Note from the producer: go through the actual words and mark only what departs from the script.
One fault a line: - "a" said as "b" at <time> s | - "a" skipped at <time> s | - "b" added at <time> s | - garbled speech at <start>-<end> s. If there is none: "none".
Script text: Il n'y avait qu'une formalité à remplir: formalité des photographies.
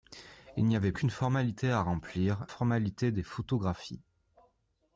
none